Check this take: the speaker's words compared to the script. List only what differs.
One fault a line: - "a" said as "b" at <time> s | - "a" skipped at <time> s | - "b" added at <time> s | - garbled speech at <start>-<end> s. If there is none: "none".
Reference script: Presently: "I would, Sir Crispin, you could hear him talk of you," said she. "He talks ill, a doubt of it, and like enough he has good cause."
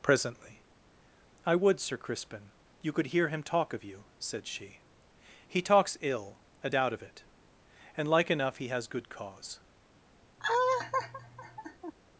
none